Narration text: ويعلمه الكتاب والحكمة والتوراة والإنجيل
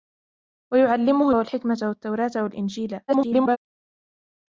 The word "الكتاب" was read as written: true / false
false